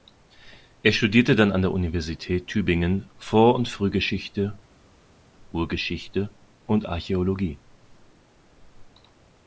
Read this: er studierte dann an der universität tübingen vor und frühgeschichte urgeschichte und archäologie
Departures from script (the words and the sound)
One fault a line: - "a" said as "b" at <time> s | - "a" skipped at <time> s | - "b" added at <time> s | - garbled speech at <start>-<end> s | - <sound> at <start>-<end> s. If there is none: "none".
none